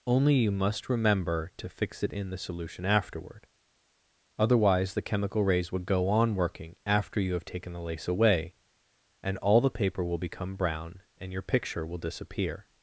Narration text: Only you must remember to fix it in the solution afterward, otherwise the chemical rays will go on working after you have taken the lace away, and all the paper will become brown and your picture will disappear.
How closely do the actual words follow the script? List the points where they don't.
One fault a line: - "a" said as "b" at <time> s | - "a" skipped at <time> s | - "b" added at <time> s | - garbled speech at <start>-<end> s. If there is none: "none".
none